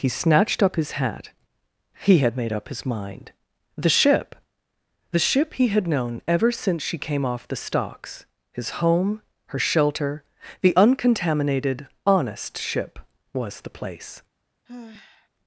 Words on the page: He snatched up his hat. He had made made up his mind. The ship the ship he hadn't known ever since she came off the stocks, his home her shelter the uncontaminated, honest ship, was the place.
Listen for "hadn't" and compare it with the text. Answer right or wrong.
wrong